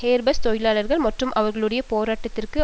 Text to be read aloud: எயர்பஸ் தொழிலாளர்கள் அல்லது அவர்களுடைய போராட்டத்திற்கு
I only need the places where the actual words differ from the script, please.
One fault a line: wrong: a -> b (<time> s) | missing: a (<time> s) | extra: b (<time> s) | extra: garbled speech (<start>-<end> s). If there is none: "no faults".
wrong: அல்லது -> மற்றும் (1.0 s)